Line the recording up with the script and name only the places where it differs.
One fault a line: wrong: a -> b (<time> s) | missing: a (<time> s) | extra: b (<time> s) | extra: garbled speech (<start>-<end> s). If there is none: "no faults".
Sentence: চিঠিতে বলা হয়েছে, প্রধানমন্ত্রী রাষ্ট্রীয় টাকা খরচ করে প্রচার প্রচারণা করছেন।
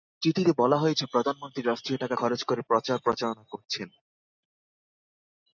no faults